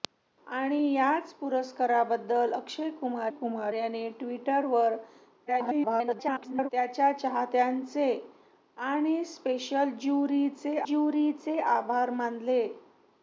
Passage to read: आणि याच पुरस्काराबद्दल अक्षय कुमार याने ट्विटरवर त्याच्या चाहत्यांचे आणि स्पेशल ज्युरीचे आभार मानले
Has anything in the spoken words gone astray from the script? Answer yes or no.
yes